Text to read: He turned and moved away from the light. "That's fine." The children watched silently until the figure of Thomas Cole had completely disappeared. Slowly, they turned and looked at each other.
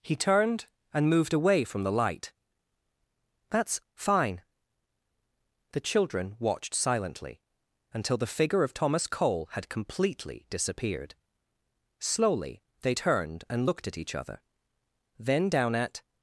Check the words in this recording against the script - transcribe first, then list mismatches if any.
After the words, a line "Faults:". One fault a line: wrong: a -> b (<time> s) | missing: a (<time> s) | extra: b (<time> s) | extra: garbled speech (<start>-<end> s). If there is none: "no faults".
He turned and moved away from the light. "That's fine." The children watched silently until the figure of Thomas Cole had completely disappeared. Slowly, they turned and looked at each other. Then down at
Faults:
extra: Then down at (15.2 s)